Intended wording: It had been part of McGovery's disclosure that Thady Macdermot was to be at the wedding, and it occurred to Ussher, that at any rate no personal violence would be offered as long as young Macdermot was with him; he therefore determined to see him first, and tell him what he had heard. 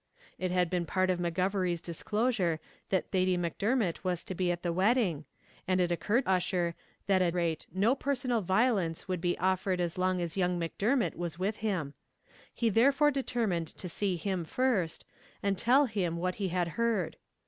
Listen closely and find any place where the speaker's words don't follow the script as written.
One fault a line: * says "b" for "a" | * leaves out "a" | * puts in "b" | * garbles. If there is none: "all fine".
* leaves out "to"
* leaves out "any"